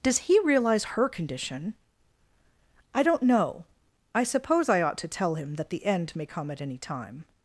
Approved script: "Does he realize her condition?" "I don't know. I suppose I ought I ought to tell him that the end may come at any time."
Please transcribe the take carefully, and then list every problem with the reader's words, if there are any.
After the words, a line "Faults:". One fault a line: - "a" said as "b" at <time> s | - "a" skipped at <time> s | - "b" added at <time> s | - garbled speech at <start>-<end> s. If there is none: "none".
"Does he realize her condition?" "I don't know. I suppose I ought to tell him that the end may come at any time."
Faults:
- "I ought" skipped at 5.0 s